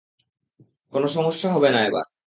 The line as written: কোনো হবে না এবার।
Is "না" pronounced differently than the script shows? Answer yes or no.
no